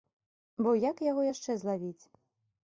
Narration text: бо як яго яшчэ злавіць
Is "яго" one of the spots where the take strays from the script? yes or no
no